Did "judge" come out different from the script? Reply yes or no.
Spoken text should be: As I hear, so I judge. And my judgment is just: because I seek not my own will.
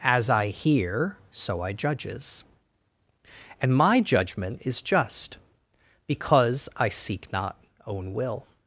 yes